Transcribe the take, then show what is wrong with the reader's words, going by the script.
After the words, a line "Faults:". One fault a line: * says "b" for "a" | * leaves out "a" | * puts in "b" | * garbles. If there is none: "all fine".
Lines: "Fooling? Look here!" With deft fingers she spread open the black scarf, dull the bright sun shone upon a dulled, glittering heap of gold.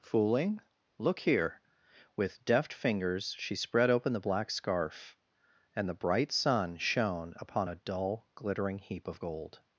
"Fooling? Look here!" With deft fingers she spread open the black scarf, and the bright sun shone upon a dull, glittering heap of gold.
Faults:
* says "and" for "dull"
* says "dull" for "dulled"